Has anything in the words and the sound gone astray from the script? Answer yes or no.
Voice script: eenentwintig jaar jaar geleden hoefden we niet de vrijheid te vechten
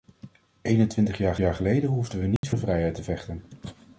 yes